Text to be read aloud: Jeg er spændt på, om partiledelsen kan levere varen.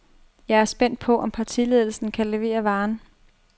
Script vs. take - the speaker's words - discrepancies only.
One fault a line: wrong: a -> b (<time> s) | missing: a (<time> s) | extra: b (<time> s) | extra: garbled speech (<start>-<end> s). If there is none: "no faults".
no faults